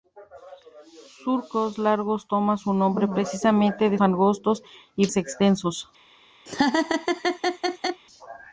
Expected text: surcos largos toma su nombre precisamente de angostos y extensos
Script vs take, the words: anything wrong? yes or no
no